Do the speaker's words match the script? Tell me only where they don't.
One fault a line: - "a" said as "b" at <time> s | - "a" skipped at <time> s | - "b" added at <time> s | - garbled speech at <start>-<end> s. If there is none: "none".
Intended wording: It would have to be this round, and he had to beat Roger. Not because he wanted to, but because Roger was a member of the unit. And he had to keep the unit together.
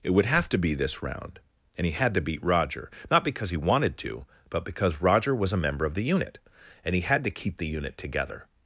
none